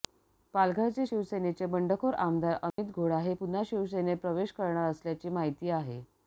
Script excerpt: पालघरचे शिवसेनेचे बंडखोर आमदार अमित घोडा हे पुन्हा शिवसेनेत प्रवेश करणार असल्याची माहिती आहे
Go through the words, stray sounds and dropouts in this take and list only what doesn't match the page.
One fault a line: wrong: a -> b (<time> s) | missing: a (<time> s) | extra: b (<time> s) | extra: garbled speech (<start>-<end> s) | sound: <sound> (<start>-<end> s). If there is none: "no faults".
sound: dropout (2.7-2.8 s)